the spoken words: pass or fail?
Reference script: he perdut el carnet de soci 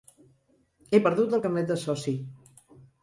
pass